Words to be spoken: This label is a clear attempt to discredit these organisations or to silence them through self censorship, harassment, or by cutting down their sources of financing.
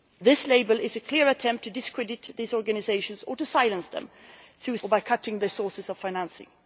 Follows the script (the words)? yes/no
no